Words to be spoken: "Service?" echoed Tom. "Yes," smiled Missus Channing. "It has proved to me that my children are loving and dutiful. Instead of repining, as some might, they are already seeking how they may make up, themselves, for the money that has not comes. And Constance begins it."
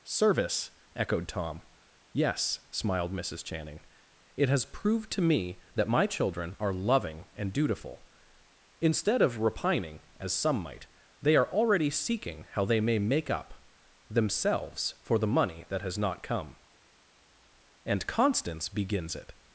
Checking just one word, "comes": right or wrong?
wrong